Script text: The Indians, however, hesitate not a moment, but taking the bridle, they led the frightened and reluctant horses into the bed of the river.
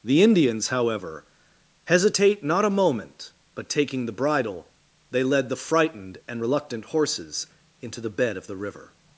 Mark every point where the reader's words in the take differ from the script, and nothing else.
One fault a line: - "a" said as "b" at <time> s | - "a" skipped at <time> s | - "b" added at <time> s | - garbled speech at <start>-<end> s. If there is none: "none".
none